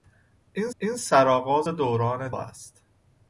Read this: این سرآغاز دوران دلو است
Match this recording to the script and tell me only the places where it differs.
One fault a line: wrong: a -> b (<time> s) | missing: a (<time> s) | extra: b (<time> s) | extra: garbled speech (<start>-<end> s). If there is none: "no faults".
extra: این (0.8 s)
missing: دلو (2.3 s)